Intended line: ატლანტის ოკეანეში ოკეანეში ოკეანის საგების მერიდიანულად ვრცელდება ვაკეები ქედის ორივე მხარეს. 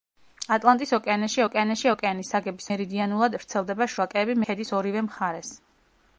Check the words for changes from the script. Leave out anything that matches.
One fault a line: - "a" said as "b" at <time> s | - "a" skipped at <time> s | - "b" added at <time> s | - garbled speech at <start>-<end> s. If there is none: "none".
none